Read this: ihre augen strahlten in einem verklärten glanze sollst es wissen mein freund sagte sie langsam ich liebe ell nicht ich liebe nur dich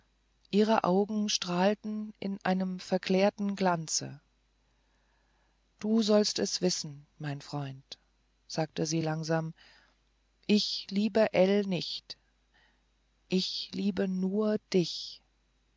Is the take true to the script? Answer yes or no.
no